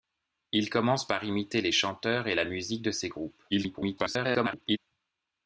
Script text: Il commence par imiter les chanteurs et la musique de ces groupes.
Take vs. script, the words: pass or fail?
fail